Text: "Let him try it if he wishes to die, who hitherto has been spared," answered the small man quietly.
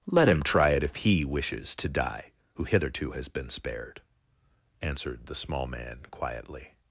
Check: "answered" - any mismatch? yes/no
no